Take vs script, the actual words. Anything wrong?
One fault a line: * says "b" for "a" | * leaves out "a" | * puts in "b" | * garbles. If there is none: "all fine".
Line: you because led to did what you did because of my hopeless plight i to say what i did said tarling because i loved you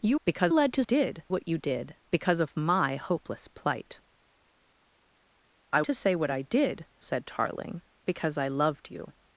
all fine